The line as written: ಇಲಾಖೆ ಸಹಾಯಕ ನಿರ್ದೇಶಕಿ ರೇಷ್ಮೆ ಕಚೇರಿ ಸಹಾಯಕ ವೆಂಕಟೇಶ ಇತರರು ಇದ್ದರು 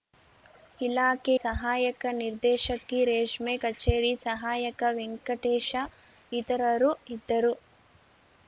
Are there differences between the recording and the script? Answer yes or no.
no